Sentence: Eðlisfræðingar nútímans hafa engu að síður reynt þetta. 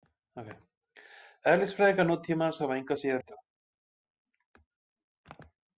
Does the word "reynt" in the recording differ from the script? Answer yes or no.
yes